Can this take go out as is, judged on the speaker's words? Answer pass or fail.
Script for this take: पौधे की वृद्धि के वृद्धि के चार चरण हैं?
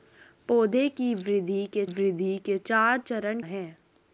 pass